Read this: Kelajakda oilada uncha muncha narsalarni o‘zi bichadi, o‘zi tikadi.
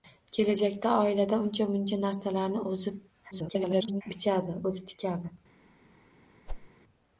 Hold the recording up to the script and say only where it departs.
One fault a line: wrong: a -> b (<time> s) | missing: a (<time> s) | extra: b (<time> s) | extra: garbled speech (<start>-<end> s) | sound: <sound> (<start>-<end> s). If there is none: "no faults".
extra: garbled speech (3.3-4.0 s)
sound: whoosh (6.5-6.7 s)